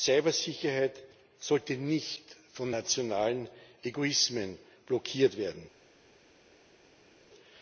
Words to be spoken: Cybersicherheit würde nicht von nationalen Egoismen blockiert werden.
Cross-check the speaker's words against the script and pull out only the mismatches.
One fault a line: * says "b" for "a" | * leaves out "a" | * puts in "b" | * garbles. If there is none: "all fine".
* says "sollte" for "würde"